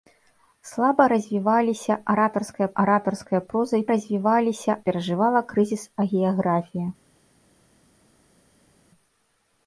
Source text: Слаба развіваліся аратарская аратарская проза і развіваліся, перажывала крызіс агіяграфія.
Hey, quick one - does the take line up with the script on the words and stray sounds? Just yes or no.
yes